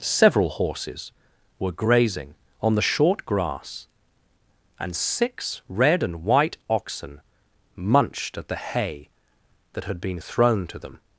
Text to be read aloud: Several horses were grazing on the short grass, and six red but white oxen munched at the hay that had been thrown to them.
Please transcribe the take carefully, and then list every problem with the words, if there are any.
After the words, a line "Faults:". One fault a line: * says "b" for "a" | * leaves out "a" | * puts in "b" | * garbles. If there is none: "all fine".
Several horses were grazing on the short grass, and six red and white oxen munched at the hay that had been thrown to them.
Faults:
* says "and" for "but"